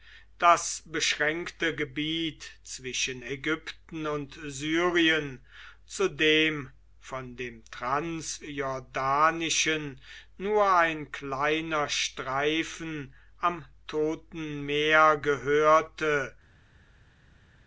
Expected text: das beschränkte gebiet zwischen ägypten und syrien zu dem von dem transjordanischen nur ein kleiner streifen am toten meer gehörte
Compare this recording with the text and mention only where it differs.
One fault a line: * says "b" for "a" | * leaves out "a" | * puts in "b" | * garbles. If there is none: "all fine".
all fine